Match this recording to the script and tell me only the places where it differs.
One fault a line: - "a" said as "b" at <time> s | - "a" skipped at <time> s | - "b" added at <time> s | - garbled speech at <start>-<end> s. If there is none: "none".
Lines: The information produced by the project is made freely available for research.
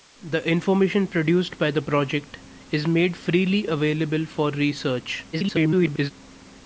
- garbled speech at 5.3-6.1 s